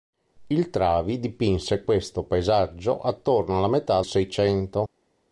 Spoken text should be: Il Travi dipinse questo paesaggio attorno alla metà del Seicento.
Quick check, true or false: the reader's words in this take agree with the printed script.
false